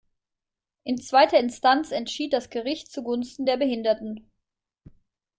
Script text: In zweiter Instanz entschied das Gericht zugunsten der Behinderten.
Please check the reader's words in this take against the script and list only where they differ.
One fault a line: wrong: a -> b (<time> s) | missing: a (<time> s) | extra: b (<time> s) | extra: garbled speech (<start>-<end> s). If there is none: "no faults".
no faults